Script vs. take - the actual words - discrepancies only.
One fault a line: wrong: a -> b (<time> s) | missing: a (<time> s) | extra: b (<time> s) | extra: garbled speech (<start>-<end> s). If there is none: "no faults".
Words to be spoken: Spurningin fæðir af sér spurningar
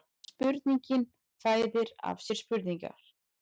no faults